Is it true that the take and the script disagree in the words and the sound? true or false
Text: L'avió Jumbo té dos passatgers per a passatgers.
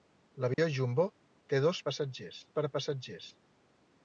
true